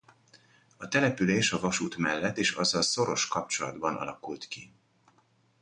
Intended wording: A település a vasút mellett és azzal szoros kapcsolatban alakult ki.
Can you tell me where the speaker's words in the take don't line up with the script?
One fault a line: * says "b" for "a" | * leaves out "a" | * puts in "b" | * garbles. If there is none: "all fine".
all fine